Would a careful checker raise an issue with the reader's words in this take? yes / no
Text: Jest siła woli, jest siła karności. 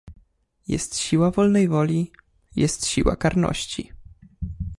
yes